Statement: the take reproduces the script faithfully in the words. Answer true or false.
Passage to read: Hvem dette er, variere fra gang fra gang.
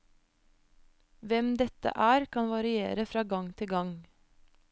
false